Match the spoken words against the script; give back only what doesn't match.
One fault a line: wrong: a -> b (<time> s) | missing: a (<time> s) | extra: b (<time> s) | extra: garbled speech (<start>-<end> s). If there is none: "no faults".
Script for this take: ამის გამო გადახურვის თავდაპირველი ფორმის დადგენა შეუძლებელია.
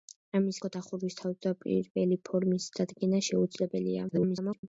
missing: გამო (0.6 s)
extra: garbled speech (4.1-4.6 s)